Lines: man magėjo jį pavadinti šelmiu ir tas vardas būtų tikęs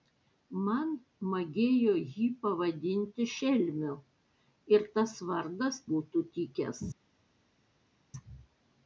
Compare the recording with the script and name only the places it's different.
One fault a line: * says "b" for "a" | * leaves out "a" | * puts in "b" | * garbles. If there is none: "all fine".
all fine